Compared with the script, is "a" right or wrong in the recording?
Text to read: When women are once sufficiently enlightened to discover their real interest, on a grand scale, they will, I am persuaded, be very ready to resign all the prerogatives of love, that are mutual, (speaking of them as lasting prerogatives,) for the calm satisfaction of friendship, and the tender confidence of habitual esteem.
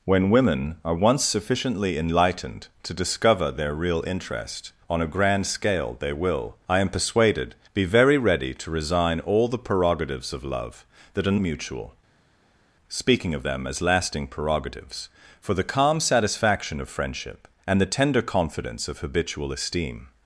right